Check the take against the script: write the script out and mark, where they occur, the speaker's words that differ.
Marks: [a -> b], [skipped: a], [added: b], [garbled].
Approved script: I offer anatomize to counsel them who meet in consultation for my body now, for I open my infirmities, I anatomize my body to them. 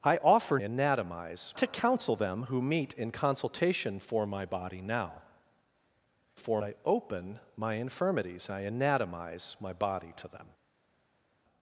I offer anatomize to counsel them who meet in consultation for my body now, for I open my infirmities, I anatomize my body to them.